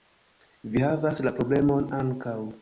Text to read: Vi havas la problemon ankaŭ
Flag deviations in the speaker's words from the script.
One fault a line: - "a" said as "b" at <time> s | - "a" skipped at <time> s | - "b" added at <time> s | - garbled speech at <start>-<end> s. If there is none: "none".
none